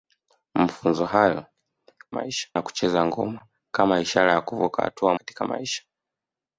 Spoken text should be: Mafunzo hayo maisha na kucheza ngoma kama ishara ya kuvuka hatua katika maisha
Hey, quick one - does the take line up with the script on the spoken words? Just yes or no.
yes